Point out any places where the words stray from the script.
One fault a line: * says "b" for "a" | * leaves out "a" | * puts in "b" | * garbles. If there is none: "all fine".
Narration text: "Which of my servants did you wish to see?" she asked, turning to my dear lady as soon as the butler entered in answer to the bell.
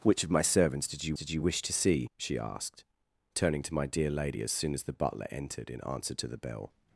* puts in "did you"